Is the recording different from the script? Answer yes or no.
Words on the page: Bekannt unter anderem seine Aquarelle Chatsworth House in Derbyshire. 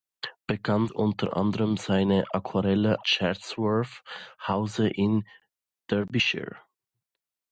no